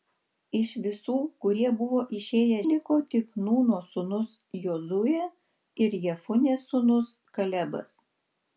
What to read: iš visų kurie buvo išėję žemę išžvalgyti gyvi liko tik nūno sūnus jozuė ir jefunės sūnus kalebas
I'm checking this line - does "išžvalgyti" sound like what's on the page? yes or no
no